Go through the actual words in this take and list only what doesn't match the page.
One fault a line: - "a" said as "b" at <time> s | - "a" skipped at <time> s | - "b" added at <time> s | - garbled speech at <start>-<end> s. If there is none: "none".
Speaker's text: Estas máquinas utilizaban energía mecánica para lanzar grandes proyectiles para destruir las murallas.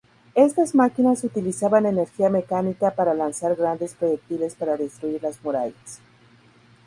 none